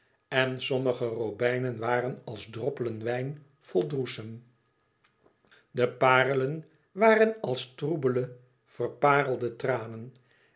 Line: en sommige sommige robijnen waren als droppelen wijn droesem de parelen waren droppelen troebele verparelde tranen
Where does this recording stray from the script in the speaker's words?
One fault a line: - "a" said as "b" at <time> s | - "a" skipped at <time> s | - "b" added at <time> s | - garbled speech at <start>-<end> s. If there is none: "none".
- "sommige" skipped at 1.1 s
- "vol" added at 3.6 s
- "droppelen" said as "als" at 7.4 s